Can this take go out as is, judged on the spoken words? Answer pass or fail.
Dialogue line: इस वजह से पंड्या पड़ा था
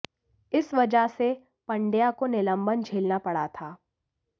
fail